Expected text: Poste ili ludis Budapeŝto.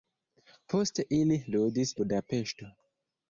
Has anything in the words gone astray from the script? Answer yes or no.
no